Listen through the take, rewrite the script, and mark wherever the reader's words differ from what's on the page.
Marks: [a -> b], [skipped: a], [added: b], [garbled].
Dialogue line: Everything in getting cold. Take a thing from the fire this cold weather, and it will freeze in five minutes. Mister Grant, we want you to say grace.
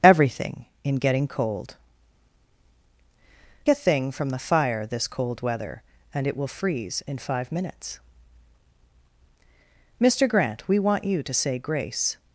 Everything in getting cold. [skipped: Take] a thing from the fire this cold weather, and it will freeze in five minutes. Mister Grant, we want you to say grace.